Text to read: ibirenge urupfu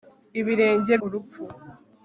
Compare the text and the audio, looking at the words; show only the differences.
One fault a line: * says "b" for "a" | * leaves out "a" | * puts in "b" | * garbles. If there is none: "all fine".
all fine